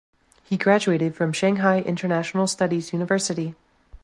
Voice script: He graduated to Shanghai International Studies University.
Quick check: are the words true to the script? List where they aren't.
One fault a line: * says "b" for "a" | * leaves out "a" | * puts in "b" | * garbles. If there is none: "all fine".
* says "from" for "to"